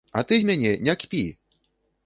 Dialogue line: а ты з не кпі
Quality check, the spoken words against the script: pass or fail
fail